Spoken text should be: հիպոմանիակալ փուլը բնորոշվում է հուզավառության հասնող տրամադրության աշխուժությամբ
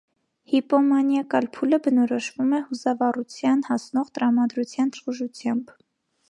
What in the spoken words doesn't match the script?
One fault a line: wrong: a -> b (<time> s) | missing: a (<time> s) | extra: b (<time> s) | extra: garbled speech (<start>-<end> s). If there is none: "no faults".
no faults